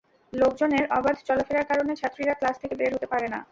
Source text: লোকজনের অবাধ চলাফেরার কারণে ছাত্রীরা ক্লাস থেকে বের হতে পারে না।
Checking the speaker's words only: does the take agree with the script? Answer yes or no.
yes